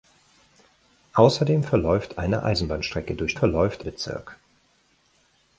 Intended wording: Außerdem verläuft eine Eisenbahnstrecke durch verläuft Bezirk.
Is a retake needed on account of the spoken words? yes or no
no